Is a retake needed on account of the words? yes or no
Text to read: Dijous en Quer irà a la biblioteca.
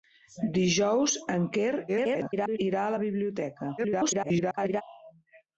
yes